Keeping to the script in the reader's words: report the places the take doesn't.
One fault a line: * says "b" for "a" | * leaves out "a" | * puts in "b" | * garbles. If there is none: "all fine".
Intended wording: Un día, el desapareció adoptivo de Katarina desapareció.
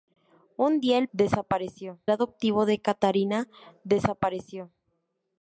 all fine